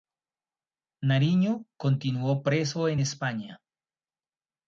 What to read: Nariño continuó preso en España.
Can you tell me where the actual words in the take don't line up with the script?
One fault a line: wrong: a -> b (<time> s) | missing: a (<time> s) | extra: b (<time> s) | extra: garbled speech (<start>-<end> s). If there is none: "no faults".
no faults